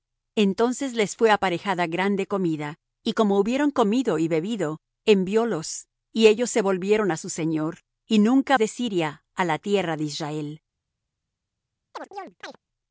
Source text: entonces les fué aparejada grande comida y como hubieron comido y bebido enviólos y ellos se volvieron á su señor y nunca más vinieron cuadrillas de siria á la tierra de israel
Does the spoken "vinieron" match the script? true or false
false